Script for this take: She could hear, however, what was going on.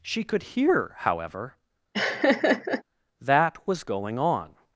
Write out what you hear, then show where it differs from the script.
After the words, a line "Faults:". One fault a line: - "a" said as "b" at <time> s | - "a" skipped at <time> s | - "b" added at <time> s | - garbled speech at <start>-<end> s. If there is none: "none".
She could hear, however, that was going on.
Faults:
- "what" said as "that" at 3.2 s